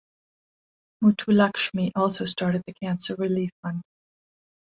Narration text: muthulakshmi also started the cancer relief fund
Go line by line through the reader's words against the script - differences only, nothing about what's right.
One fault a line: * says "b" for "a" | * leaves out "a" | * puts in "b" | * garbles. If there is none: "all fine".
all fine